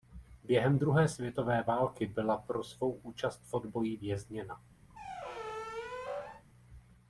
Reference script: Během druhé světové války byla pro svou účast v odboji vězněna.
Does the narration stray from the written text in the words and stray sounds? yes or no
yes